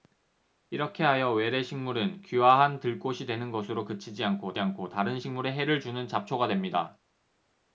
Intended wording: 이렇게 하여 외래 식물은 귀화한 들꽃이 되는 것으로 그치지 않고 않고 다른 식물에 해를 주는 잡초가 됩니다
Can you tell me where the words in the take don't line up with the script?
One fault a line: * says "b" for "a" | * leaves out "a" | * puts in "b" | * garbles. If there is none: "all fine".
all fine